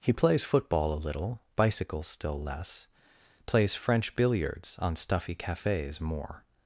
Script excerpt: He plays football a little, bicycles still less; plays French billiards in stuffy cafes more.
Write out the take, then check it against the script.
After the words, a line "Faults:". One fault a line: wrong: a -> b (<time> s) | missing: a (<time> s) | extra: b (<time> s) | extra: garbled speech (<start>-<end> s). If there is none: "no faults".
He plays football a little, bicycles still less; plays French billiards on stuffy cafes more.
Faults:
wrong: in -> on (4.8 s)